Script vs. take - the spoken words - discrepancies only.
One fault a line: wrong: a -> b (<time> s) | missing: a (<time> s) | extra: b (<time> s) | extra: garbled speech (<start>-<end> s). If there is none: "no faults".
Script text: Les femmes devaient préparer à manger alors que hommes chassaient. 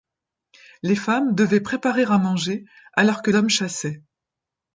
no faults